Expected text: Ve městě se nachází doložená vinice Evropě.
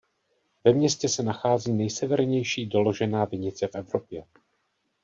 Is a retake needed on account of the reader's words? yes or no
yes